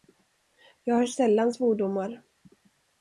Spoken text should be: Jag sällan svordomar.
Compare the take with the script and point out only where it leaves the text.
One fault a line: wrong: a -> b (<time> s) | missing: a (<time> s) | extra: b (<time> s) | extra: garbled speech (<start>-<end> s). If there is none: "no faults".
extra: hör (0.9 s)